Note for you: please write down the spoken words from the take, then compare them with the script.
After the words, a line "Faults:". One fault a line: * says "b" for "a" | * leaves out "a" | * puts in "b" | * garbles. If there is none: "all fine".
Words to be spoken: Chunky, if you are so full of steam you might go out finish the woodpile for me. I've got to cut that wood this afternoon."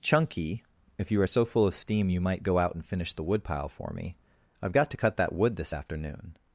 Chunky, if you are so full of steam you might go out and finish the woodpile for me. I've got to cut that wood this afternoon."
Faults:
* puts in "and"